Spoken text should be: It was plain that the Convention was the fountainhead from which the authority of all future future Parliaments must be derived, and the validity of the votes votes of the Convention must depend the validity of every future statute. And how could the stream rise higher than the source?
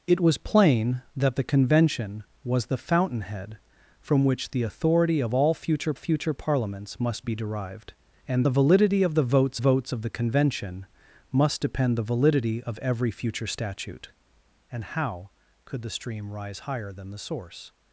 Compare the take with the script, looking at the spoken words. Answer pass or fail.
pass